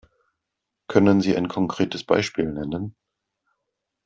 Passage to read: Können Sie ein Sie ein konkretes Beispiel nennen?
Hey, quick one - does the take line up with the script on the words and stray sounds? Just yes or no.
no